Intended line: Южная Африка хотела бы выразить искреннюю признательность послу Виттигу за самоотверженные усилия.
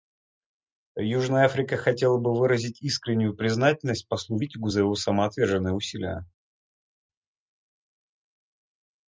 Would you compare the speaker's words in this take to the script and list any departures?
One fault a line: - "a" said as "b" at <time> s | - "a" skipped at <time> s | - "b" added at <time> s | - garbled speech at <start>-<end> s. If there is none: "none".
- "его" added at 4.8 s